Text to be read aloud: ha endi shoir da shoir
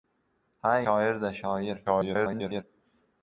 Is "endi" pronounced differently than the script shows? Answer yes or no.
yes